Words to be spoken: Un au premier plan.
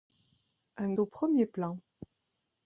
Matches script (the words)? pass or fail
pass